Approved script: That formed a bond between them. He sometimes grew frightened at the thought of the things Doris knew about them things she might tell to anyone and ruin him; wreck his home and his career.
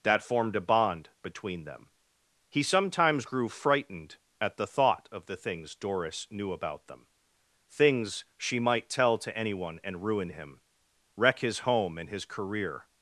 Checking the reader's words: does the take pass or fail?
pass